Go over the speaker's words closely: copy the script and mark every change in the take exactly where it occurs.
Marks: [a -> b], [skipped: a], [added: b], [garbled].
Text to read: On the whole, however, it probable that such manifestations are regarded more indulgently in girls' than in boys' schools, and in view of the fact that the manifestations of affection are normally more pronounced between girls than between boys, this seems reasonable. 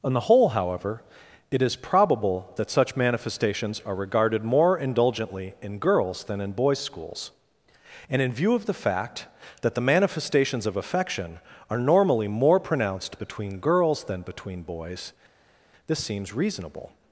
On the whole, however, it [added: is] probable that such manifestations are regarded more indulgently in girls' than in boys' schools, and in view of the fact that the manifestations of affection are normally more pronounced between girls than between boys, this seems reasonable.